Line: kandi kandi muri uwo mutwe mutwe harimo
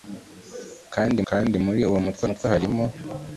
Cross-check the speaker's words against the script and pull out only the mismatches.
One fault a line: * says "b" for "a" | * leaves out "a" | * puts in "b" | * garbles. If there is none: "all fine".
all fine